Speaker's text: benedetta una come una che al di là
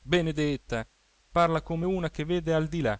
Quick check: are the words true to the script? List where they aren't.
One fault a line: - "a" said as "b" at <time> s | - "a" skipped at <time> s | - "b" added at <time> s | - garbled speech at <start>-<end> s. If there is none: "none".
- "una" said as "parla" at 1.3 s
- "vede" added at 2.2 s